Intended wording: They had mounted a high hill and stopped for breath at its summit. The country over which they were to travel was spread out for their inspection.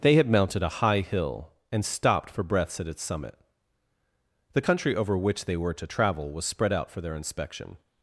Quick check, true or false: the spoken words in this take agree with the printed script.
false